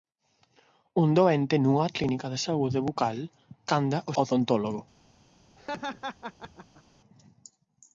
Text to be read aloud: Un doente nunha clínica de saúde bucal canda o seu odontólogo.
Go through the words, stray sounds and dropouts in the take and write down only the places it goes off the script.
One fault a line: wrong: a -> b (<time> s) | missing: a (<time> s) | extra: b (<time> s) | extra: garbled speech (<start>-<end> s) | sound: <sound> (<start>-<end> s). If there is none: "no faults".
missing: seu (4.1 s)
sound: laugh (5.6-6.8 s)